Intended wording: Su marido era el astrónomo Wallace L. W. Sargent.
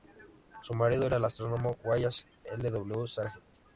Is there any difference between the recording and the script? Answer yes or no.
no